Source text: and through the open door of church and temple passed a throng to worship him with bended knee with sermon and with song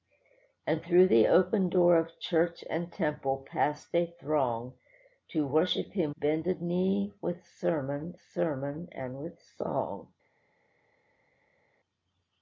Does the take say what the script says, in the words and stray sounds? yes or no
no